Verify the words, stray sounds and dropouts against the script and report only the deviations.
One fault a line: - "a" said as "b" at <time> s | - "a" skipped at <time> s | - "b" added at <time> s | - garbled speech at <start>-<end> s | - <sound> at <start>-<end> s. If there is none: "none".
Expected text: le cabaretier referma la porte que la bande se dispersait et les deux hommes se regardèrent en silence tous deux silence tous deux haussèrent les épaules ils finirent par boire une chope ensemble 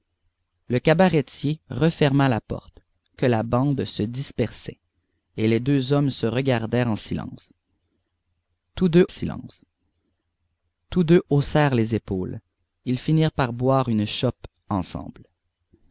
none